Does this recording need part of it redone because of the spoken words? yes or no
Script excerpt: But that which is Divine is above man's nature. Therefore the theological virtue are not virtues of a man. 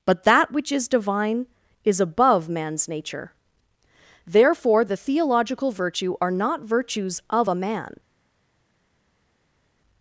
no